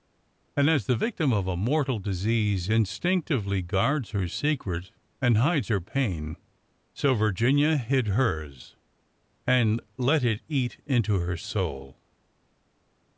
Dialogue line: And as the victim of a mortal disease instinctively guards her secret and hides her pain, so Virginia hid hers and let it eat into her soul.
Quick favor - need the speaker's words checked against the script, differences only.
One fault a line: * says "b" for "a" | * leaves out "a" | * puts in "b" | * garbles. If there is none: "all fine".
all fine